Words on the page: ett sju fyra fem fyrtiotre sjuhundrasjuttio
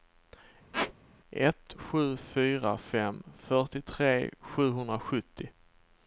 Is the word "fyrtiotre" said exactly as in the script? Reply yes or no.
yes